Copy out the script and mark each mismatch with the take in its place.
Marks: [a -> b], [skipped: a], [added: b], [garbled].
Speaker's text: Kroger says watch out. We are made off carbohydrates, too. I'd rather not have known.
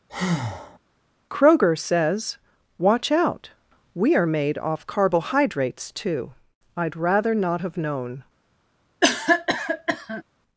Kroger says watch out. We are made off carbohydrates, too. I'd rather not have known.